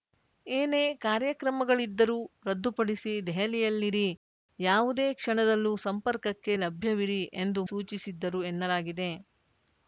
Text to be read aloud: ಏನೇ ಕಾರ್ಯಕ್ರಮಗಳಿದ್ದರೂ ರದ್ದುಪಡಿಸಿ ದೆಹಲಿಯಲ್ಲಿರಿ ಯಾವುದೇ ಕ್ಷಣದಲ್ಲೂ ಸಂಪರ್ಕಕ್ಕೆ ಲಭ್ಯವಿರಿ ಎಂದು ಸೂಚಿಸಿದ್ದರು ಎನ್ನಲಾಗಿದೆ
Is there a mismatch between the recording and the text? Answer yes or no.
no